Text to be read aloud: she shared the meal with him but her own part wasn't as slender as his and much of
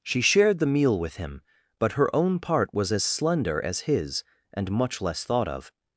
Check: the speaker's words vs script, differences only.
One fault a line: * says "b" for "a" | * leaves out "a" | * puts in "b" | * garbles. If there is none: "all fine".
* says "was" for "wasn't"
* puts in "less thought"